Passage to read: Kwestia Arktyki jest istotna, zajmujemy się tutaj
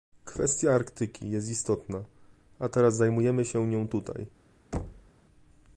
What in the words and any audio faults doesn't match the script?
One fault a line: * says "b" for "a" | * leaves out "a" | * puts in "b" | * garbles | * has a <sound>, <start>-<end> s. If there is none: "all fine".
* puts in "a teraz"
* puts in "nią"
* has a thud, 4.7-5.1 s